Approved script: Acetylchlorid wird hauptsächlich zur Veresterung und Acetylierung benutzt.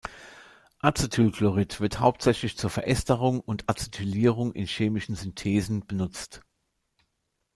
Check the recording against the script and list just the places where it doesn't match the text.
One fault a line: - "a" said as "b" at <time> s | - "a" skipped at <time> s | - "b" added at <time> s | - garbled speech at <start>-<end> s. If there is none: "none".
- "in chemischen Synthesen" added at 4.5 s